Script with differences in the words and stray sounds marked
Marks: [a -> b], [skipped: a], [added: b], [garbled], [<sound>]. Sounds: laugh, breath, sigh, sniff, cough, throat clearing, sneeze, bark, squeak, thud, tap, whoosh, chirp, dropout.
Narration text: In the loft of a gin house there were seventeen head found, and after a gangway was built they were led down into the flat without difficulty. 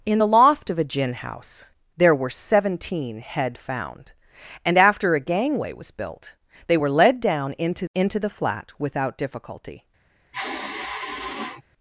In the loft of a gin house there were seventeen head found, and after a gangway was built they were led down into [added: into] the flat without difficulty. [sigh]